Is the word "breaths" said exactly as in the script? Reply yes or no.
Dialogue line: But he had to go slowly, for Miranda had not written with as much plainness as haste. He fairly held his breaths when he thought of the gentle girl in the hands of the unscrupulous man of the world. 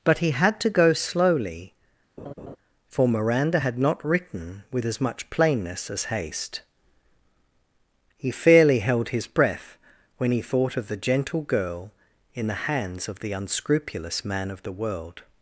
no